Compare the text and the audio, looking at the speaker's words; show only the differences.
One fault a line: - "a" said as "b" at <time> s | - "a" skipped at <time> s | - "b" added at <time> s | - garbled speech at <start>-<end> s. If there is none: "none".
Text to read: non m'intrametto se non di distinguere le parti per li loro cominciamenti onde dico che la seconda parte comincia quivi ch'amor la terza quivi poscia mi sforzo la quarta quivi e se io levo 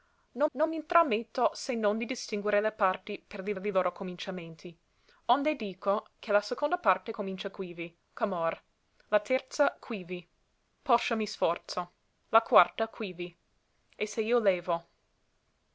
- "non" added at 0.5 s
- "li" added at 3.6 s